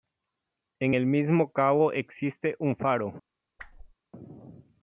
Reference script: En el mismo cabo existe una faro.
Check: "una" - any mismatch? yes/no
yes